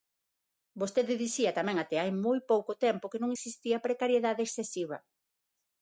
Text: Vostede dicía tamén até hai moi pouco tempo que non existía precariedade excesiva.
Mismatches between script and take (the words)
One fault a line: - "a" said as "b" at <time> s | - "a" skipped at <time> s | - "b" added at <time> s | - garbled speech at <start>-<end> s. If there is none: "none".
none